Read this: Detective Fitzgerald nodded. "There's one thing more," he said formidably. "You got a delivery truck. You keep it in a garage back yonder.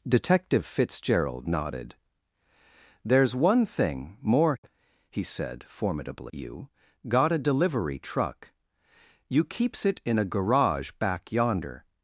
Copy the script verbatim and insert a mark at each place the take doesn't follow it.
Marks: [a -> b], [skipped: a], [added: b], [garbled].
Detective Fitzgerald nodded. "There's one thing more," he said formidably. "You got a delivery truck. You [keep -> keeps] it in a garage back yonder.